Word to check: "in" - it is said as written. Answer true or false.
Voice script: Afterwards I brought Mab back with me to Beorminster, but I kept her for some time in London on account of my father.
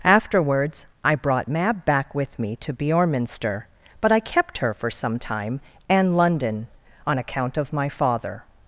false